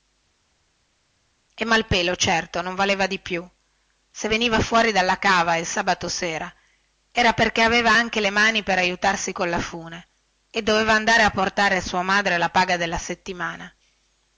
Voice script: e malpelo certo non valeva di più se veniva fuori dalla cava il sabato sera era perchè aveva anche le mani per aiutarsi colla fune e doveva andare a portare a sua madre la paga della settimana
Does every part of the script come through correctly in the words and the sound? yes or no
yes